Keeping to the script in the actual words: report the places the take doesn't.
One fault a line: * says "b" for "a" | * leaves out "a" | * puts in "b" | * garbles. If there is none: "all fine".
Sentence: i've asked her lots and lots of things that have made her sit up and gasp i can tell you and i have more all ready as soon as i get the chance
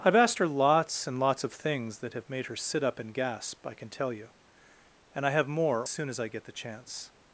* leaves out "all ready as"